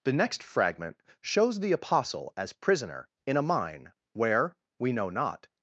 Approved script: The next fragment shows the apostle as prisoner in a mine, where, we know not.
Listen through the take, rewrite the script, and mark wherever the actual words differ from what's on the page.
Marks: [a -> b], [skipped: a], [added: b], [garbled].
The next fragment shows the apostle as prisoner in a mine, where, we know not.